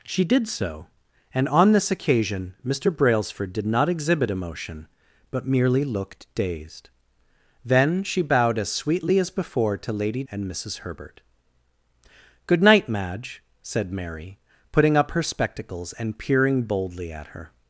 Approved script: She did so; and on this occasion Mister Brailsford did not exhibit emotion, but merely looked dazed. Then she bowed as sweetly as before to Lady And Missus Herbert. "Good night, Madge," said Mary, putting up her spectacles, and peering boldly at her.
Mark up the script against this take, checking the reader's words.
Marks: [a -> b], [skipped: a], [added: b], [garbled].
She did so; and on this occasion Mister Brailsford did not exhibit emotion, but merely looked dazed. Then she bowed as sweetly as before to Lady And Missus Herbert. "Good night, Madge," said Mary, putting up her spectacles, and peering boldly at her.